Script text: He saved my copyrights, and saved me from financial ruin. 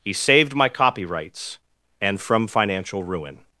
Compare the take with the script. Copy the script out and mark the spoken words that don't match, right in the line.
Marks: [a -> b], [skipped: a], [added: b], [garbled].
He saved my copyrights, and [skipped: saved me] from financial ruin.